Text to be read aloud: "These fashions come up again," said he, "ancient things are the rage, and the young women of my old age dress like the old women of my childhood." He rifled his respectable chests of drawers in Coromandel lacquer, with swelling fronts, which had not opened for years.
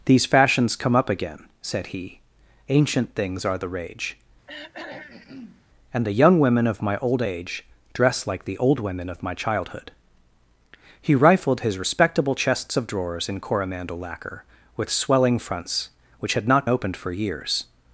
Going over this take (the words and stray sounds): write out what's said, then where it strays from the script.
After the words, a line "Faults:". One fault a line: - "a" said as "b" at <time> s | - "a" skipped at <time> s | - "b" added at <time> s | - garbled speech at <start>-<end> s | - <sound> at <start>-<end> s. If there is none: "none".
"These fashions come up again," said he, "ancient things are the rage, and the young women of my old age dress like the old women of my childhood." He rifled his respectable chests of drawers in Coromandel lacquer, with swelling fronts, which had not opened for years.
Faults:
- throat clearing at 4.5-5.6 s